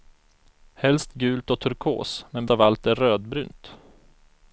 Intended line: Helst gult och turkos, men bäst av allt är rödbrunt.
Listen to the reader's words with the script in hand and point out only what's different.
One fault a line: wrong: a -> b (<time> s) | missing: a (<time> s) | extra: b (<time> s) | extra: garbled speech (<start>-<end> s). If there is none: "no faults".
missing: bäst (2.5 s)